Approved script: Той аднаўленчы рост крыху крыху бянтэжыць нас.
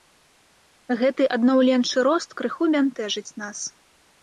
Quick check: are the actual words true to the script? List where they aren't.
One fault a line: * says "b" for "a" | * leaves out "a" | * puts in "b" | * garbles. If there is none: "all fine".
* says "Гэты" for "Той"
* leaves out "крыху"